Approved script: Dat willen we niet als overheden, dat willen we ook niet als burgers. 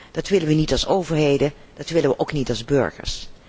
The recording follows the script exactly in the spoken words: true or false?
true